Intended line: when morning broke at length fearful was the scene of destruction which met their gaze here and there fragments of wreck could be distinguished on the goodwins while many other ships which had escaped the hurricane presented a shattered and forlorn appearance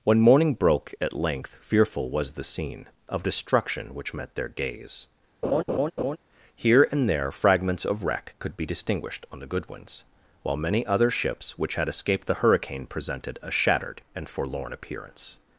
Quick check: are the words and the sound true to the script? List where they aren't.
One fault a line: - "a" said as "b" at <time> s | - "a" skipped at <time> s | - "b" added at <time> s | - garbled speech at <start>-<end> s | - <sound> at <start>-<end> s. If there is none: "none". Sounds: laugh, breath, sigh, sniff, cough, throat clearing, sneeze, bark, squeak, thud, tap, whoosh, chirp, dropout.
- laugh at 5.4-6.2 s